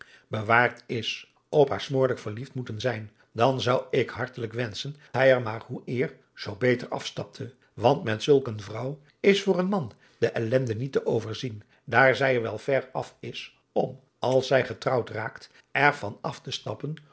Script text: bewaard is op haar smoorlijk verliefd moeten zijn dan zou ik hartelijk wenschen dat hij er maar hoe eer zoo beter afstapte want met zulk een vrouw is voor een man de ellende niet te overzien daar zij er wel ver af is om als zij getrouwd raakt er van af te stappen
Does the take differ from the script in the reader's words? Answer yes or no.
yes